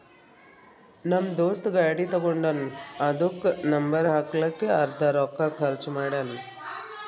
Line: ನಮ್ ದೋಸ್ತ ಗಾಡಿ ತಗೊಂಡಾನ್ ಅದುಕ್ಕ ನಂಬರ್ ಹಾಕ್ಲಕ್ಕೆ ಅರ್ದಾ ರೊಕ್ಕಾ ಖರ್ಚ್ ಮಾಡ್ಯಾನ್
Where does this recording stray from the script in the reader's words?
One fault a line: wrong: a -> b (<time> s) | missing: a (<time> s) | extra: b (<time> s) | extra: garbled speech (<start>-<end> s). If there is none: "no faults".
no faults